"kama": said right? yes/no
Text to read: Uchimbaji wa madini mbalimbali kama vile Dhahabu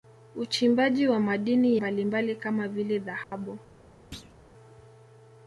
yes